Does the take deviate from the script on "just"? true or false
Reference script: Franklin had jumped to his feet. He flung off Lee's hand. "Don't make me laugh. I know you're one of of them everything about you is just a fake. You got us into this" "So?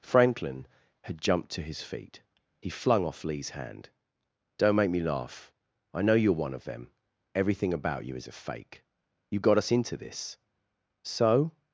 true